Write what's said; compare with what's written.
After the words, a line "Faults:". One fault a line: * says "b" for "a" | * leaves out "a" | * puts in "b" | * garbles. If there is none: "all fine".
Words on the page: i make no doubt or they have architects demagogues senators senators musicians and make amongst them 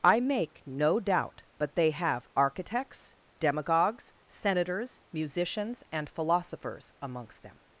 i make no doubt but they have architects demagogues senators musicians and philosophers amongst them
Faults:
* says "but" for "or"
* leaves out "senators"
* says "philosophers" for "make"